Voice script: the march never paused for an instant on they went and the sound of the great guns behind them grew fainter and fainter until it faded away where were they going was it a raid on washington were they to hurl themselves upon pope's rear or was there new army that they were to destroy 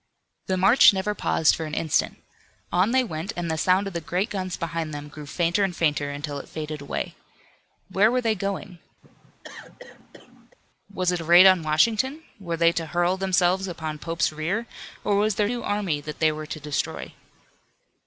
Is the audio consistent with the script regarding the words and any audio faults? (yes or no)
no